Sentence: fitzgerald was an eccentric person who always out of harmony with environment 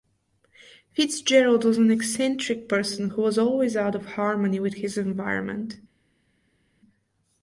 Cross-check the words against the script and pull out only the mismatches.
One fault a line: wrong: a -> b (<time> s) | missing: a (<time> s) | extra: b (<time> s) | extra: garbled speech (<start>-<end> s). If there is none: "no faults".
extra: was (3.2 s)
extra: his (4.7 s)